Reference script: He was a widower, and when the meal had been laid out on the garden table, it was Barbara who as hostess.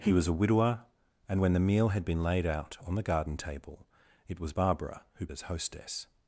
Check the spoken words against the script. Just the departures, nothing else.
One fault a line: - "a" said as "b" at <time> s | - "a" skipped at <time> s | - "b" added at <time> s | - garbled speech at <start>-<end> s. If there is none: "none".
none